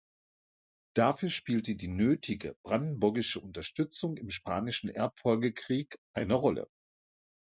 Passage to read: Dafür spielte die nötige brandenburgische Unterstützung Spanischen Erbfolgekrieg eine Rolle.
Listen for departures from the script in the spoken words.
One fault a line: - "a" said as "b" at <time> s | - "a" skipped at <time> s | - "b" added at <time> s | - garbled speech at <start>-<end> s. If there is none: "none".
- "im" added at 4.2 s